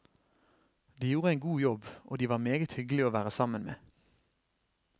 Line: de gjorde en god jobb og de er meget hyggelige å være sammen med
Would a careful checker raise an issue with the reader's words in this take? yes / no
yes